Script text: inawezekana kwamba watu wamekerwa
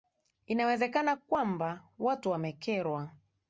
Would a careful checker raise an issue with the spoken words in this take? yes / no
no